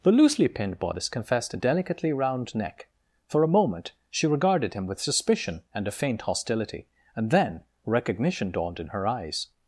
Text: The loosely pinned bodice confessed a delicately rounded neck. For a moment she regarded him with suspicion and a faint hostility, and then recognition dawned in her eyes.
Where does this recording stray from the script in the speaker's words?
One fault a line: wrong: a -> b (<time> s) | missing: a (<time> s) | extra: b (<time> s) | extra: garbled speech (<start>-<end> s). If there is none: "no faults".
wrong: rounded -> round (2.1 s)